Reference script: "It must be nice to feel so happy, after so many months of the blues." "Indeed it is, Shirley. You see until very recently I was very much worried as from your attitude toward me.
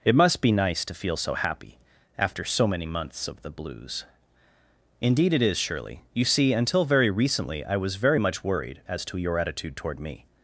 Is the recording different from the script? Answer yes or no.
yes